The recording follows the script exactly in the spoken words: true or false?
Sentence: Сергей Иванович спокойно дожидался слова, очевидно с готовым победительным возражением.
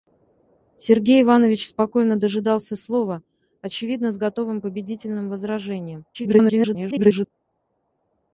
false